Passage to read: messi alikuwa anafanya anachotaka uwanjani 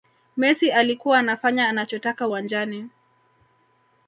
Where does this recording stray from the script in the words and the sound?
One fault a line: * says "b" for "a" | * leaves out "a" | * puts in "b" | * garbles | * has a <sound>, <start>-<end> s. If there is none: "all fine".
all fine